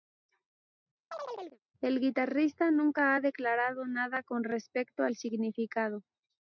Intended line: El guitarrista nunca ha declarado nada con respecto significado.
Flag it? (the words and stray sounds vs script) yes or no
yes